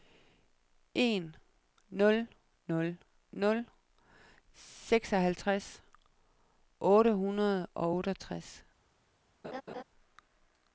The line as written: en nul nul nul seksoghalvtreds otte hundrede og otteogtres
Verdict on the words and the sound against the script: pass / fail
fail